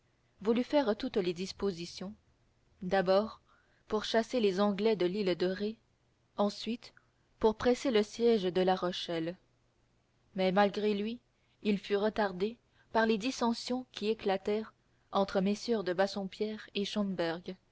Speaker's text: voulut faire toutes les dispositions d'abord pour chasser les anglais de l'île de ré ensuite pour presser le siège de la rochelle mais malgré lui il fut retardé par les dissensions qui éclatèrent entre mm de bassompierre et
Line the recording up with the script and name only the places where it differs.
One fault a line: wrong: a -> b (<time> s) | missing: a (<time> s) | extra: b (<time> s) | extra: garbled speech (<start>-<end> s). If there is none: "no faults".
no faults